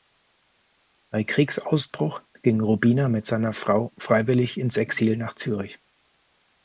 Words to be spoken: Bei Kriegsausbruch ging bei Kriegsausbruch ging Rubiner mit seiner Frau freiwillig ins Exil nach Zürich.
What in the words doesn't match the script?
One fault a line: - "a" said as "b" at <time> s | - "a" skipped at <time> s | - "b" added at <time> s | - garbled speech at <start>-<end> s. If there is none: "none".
- "bei Kriegsausbruch ging" skipped at 2.6 s